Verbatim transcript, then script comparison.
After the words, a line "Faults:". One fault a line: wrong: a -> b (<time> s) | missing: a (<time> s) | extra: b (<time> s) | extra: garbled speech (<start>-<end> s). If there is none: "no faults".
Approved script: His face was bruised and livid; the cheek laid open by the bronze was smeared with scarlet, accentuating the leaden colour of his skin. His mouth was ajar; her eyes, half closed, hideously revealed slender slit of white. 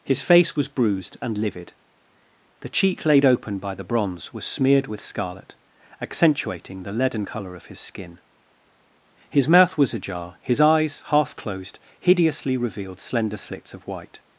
His face was bruised and livid; the cheek laid open by the bronze was smeared with scarlet, accentuating the leaden colour of his skin. His mouth was ajar; his eyes, half closed, hideously revealed slender slits of white.
Faults:
wrong: her -> his (10.4 s)
wrong: slit -> slits (13.4 s)